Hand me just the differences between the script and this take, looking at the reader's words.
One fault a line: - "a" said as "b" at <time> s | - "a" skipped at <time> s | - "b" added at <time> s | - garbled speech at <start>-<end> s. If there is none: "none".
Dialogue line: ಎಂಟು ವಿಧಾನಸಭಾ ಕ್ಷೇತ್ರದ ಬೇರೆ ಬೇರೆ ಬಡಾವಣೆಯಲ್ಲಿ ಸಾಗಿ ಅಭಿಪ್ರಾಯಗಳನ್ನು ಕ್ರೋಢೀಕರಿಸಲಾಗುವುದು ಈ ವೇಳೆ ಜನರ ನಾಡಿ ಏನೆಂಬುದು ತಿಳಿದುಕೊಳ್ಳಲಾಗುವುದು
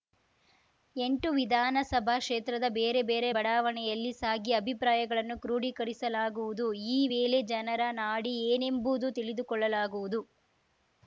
none